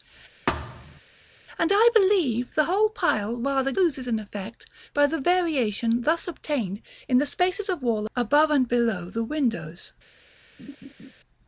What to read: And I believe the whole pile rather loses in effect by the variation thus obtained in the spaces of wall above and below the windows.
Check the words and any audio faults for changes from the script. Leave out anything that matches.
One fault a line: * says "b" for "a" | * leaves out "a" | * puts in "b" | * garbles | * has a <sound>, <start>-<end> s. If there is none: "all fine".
* has a thud, 0.5-1.0 s
* has a laugh, 10.6-11.1 s